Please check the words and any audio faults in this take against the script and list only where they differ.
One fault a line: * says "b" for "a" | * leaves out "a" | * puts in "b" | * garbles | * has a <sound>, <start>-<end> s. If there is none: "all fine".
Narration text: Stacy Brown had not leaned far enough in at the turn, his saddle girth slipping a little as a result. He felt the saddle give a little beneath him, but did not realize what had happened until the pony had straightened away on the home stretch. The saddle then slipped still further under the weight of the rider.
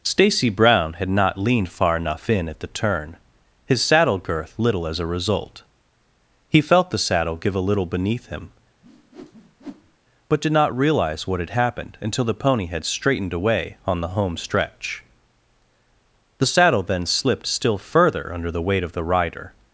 * leaves out "slipping a"
* has a whoosh, 8.8-10.0 s